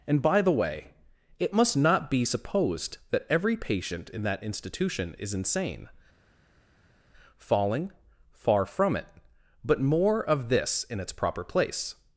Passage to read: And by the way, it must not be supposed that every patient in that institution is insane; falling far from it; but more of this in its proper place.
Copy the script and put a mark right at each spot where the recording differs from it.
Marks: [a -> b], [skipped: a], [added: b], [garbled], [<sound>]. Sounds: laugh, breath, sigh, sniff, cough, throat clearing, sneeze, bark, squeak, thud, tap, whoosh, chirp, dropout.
And by the way, it must not be supposed that every patient in that institution is insane; falling far from it; but more of this in its proper place.